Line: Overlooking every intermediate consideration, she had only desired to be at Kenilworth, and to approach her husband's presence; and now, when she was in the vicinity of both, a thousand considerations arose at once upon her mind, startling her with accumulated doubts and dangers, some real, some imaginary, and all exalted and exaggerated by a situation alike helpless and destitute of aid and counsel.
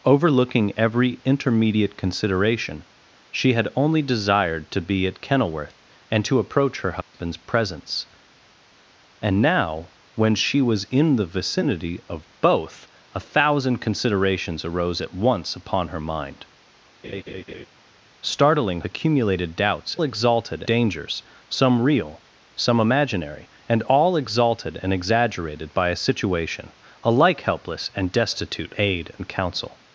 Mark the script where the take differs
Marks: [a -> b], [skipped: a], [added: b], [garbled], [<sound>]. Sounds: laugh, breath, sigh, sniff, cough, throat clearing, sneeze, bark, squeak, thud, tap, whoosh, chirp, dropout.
Overlooking every intermediate consideration, she had only desired to be at Kenilworth, and to approach her husband's [dropout] presence; and now, when she was in the vicinity of both, a thousand considerations arose at once upon her mind, [laugh] startling [skipped: her with] accumulated doubts [and -> exalted] dangers, some real, some imaginary, and all exalted and exaggerated by a situation alike helpless and destitute [skipped: of] aid and counsel.